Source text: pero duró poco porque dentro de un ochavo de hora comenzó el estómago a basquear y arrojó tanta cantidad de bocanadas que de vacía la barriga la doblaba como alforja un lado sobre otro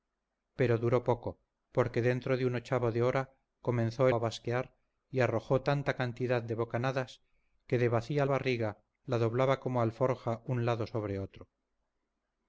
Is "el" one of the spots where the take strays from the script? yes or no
yes